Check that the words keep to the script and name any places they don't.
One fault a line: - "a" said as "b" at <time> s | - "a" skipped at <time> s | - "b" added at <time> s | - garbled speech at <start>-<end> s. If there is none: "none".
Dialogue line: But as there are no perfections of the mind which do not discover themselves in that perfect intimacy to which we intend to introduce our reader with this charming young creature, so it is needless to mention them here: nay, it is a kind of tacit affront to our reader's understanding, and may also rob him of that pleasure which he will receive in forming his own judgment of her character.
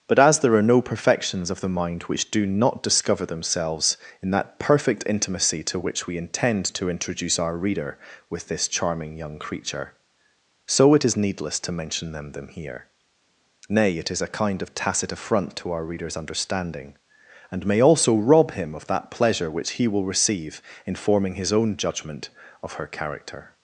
- "them" added at 12.3 s